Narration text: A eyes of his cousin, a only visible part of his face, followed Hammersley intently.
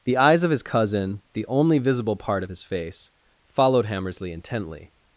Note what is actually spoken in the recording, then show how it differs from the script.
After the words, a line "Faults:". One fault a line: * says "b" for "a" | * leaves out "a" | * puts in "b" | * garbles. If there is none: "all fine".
The eyes of his cousin, the only visible part of his face, followed Hammersley intently.
Faults:
* says "The" for "A"
* says "the" for "a"